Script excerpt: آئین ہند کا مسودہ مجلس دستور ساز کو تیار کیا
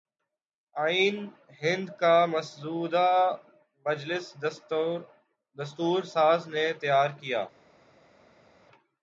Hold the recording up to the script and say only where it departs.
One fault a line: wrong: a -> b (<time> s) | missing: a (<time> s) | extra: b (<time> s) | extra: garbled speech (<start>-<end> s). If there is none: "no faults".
wrong: کو -> نے (6.5 s)